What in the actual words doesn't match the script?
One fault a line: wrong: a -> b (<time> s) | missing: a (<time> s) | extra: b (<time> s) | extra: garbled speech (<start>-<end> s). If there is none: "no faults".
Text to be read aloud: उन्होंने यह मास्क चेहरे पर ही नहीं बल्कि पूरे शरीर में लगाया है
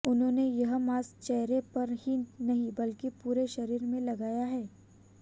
no faults